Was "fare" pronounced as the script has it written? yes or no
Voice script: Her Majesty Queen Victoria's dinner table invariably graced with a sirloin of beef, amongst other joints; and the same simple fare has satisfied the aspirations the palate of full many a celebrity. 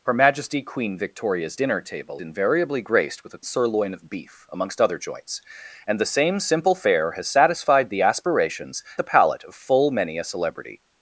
yes